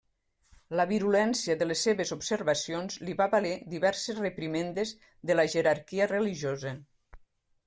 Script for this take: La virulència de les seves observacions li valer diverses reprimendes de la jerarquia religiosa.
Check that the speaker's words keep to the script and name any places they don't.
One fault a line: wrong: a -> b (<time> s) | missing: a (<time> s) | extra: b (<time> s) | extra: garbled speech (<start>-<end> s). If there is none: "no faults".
extra: va (3.2 s)